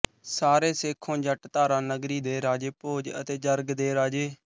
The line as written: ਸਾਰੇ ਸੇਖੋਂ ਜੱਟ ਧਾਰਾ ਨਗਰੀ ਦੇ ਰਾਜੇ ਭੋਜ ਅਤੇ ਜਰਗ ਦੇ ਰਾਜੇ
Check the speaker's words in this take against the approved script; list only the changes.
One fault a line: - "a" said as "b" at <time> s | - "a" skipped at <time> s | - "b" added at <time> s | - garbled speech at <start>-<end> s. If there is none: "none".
none